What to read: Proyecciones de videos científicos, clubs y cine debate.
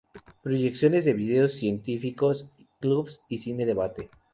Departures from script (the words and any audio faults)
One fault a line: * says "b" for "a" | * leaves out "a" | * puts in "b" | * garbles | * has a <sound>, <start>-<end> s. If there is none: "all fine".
all fine